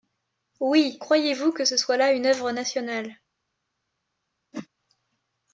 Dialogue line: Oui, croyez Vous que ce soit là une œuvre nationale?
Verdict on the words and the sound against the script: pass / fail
fail